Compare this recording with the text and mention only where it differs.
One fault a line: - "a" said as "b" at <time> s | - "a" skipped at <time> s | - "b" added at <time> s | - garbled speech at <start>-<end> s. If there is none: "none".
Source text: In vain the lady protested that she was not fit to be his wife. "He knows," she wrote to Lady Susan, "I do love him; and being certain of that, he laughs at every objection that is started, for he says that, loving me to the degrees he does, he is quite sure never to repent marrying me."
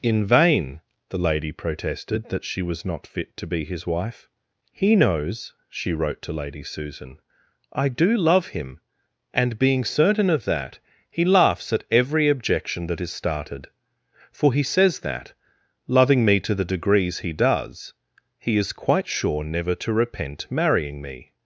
none